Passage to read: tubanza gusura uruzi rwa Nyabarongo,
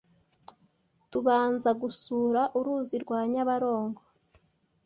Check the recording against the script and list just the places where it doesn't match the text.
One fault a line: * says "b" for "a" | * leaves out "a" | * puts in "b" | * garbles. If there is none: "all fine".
all fine